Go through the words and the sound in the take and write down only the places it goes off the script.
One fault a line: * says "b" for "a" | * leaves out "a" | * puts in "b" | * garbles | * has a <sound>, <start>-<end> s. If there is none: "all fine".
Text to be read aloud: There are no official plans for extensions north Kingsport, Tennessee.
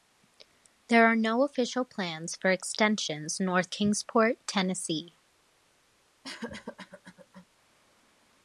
* has a cough, 6.2-7.5 s